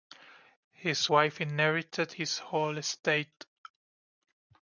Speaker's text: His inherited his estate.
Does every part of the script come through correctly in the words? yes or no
no